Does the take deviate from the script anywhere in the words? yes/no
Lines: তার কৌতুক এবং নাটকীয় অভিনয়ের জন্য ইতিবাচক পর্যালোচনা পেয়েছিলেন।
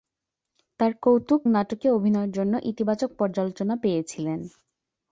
yes